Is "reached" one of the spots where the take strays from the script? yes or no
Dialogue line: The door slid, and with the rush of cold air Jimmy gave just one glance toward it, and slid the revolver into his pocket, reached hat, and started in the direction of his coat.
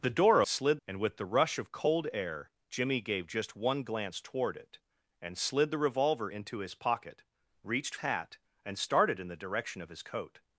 no